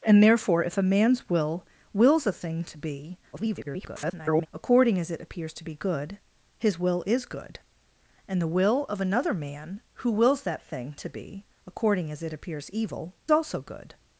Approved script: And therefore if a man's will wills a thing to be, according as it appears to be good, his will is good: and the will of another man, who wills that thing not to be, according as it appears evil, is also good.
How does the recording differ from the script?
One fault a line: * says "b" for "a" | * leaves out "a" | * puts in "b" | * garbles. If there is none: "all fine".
* garbles
* leaves out "not"
* leaves out "is"